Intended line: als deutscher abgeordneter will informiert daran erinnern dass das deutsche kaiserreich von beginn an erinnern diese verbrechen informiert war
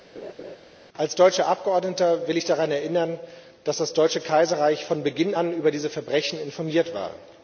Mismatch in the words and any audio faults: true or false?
true